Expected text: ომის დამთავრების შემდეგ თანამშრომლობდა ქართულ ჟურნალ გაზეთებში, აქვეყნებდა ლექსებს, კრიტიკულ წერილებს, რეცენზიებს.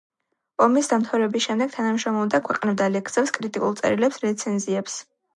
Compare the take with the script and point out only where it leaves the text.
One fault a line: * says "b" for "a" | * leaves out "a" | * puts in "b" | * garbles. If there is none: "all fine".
* leaves out "ქართულ ჟურნალ გაზეთებში"